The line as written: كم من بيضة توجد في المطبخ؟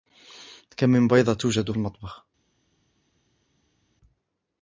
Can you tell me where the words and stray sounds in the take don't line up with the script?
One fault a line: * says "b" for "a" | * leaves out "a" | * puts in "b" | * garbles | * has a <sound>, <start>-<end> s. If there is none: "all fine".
* leaves out "في"